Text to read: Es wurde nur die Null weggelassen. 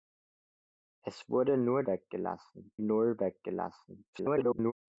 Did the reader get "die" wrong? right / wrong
wrong